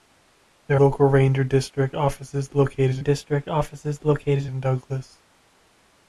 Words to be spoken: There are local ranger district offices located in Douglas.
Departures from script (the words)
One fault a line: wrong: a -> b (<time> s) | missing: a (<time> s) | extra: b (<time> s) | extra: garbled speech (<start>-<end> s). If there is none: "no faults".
missing: are (0.8 s)
extra: district offices located (3.0 s)